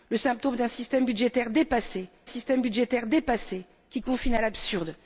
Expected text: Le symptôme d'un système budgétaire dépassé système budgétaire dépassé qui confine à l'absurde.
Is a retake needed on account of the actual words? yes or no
no